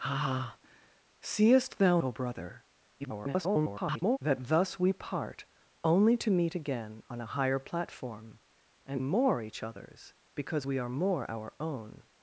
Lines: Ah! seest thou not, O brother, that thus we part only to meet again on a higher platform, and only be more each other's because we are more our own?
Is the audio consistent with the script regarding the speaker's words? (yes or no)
no